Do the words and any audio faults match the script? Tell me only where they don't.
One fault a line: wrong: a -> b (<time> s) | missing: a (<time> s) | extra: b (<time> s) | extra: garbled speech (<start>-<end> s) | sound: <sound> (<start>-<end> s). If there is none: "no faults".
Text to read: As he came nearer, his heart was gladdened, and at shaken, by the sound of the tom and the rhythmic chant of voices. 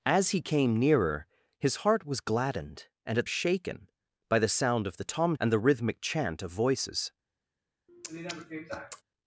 sound: sniff (7.9-9.0 s)